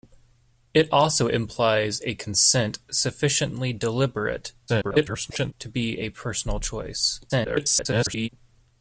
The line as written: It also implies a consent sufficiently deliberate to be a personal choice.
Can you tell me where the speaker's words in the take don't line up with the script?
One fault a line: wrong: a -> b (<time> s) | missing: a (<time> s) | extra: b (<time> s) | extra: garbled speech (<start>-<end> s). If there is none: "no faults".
extra: garbled speech (4.7-5.5 s)
extra: garbled speech (7.3-8.3 s)